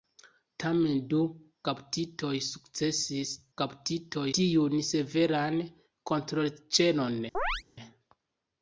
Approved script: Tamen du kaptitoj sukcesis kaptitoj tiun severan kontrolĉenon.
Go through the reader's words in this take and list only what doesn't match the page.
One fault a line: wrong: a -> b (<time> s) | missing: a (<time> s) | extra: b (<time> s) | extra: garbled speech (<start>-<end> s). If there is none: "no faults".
no faults